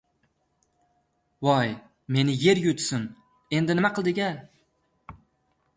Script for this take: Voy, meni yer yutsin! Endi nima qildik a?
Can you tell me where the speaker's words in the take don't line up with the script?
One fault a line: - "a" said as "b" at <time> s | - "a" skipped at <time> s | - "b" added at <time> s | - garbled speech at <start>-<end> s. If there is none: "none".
none